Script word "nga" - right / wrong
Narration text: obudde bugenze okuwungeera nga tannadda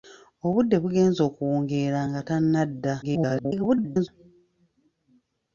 right